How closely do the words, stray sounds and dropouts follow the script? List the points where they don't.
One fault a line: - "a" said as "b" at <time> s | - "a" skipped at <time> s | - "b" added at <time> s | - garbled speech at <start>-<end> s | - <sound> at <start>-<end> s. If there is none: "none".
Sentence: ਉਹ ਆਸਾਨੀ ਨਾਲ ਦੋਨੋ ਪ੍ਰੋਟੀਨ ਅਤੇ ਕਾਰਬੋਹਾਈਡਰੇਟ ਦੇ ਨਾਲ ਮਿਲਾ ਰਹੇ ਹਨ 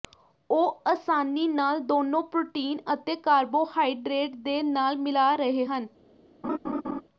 - laugh at 6.4-7.0 s